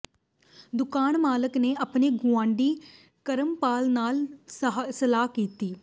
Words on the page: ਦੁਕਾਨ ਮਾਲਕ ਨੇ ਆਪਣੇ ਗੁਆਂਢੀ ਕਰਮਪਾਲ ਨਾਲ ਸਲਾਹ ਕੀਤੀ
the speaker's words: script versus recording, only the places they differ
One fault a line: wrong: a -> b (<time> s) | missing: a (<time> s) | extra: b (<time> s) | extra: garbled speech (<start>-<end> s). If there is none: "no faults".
no faults